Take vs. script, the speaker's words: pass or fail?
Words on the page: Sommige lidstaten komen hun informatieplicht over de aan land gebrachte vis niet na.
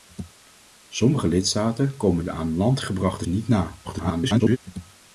fail